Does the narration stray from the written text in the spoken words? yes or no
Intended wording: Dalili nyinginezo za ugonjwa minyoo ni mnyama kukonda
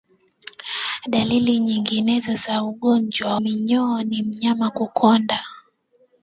no